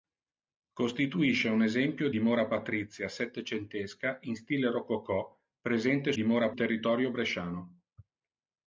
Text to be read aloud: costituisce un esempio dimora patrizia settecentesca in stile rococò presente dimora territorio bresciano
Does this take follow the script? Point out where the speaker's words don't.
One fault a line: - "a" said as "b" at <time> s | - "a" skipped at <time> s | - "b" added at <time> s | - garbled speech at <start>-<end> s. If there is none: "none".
none